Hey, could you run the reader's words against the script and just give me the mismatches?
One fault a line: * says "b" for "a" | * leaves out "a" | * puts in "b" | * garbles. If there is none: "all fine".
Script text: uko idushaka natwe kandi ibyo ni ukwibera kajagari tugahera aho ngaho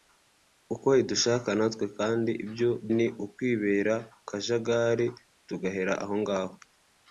all fine